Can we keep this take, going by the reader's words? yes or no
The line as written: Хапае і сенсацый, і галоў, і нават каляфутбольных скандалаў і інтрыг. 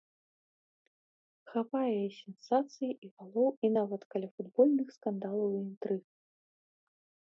yes